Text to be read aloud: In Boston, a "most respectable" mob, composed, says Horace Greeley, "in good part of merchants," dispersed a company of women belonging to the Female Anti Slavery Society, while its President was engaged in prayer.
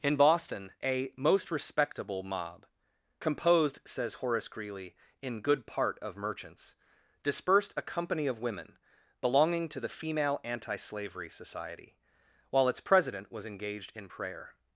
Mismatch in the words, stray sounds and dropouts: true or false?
false